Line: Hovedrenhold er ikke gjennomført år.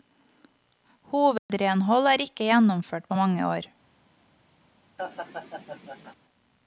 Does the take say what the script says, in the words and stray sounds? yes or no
no